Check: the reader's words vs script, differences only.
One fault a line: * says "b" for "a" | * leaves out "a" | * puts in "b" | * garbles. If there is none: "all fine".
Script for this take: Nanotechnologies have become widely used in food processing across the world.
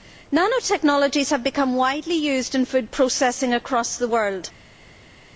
all fine